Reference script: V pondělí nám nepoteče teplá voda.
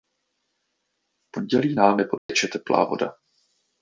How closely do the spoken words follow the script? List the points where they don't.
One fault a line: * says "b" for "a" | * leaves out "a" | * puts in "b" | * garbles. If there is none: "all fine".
all fine